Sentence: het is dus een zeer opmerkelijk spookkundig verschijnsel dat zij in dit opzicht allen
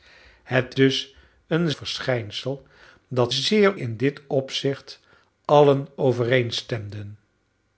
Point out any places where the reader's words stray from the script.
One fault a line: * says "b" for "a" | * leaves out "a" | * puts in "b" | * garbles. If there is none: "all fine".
* leaves out "is"
* leaves out "zeer opmerkelijk spookkundig"
* says "zeer" for "zij"